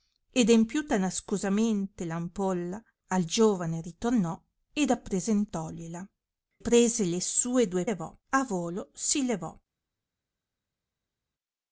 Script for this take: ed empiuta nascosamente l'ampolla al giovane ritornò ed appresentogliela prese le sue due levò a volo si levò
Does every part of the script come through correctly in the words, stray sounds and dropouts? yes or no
yes